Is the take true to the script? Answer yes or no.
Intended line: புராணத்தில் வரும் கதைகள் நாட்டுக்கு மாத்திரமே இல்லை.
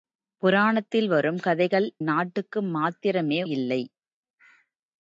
yes